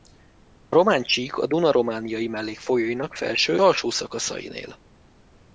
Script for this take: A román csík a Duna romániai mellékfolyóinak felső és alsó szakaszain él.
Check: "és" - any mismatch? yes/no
yes